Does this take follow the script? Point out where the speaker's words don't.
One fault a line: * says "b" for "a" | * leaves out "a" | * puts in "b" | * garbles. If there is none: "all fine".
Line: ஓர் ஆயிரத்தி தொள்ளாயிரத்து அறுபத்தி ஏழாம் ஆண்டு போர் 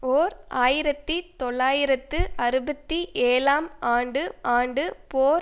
* puts in "ஆண்டு"